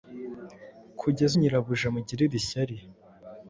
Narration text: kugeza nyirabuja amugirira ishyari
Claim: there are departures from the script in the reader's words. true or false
false